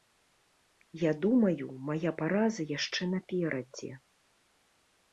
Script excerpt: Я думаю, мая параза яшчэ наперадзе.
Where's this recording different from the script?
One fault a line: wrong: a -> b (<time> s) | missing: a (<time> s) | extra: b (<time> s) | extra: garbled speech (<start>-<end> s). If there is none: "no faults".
no faults